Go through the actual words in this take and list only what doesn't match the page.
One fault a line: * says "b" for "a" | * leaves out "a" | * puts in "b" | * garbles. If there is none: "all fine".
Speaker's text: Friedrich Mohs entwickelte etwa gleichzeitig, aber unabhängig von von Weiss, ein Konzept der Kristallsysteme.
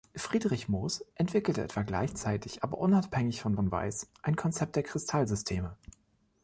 all fine